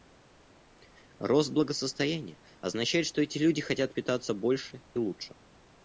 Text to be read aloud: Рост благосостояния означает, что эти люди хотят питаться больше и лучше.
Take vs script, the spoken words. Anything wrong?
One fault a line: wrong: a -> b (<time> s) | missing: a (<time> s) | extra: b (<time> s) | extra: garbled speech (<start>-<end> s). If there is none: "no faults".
no faults